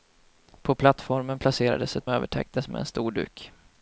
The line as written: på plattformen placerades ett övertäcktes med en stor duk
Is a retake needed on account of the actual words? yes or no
no